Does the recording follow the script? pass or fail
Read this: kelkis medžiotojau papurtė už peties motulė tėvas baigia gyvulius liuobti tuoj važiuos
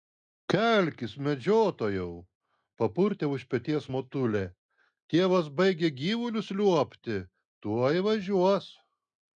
pass